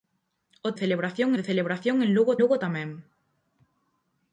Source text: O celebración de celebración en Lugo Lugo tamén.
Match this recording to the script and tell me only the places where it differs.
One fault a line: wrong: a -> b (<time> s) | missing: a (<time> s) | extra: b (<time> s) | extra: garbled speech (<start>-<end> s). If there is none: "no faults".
no faults